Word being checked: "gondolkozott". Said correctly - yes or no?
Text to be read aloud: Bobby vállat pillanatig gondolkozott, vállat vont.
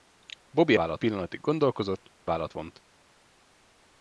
yes